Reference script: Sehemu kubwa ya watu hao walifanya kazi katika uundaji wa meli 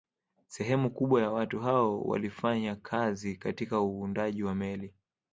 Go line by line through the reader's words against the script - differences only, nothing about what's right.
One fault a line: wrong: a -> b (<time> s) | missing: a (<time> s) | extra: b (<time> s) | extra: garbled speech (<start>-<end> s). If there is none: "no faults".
no faults